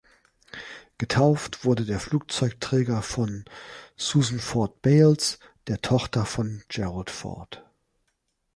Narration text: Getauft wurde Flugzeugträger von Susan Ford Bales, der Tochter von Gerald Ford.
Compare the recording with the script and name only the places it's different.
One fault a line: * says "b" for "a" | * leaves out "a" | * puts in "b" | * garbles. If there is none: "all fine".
* puts in "der"